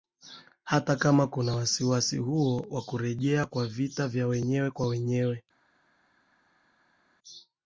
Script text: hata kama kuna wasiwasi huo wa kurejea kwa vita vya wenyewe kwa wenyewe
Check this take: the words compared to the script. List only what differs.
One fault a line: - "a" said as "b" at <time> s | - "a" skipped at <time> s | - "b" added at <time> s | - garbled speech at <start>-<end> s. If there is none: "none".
none